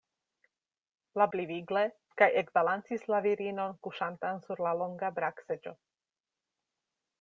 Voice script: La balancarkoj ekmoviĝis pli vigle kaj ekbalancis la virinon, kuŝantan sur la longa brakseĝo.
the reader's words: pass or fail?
fail